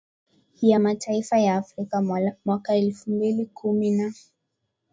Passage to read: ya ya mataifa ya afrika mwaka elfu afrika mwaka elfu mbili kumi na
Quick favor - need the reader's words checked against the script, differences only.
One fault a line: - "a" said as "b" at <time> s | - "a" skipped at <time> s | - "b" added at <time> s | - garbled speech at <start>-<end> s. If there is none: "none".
- "ya" skipped at 0.8 s
- "afrika mwaka elfu" skipped at 3.1 s